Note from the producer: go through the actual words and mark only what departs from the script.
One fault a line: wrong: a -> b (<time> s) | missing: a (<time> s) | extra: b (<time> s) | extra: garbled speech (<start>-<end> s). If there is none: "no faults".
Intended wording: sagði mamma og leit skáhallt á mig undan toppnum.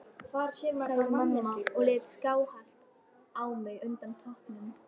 no faults